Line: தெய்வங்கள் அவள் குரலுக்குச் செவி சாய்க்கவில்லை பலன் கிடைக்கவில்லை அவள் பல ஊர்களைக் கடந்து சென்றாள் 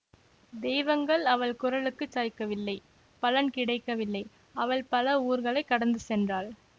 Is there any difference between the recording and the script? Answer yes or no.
yes